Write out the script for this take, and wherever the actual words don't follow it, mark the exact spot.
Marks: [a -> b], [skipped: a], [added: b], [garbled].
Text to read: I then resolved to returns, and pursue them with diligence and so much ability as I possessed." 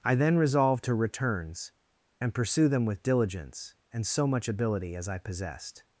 I then resolved to returns, and pursue them with diligence and so much ability as I possessed."